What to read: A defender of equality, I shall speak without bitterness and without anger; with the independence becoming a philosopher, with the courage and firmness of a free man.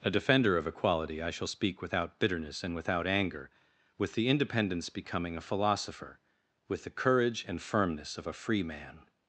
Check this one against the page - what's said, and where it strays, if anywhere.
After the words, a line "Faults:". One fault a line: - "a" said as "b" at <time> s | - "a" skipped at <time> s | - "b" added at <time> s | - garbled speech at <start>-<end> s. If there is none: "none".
A defender of equality, I shall speak without bitterness and without anger; with the independence becoming a philosopher, with the courage and firmness of a free man.
Faults:
none